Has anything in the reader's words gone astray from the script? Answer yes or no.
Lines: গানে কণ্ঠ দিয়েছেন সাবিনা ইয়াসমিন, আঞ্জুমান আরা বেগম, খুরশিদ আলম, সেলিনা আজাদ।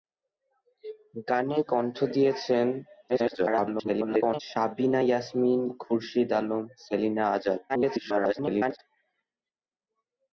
yes